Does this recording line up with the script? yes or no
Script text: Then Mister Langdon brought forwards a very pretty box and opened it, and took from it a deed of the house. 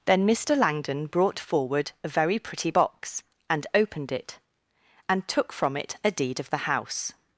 no